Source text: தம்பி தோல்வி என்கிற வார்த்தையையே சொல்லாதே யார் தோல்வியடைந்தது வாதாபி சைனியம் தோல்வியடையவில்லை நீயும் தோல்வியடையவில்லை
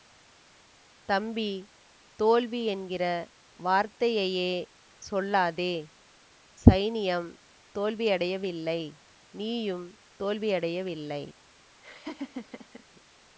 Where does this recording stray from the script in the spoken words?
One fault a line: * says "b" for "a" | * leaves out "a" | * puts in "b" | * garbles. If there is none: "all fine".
* leaves out "யார் தோல்வியடைந்தது வாதாபி"